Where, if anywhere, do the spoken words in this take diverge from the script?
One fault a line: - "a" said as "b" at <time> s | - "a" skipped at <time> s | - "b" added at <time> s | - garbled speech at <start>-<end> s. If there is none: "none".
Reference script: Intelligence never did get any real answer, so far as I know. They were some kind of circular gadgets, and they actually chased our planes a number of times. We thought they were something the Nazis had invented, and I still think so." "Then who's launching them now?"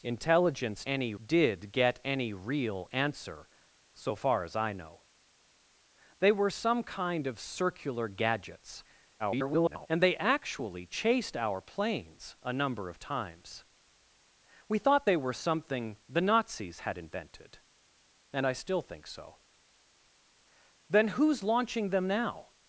- "never" said as "any" at 0.8 s
- garbled speech at 9.2-9.9 s